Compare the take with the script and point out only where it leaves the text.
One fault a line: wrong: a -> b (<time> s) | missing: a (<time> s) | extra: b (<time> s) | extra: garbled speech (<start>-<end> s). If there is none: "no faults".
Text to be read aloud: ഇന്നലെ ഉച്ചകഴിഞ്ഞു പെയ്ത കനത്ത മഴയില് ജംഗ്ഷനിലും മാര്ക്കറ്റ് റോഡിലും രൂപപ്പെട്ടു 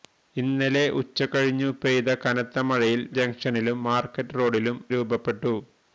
no faults